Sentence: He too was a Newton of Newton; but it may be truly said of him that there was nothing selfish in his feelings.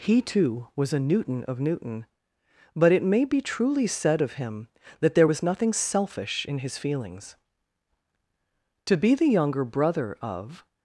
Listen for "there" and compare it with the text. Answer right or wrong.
right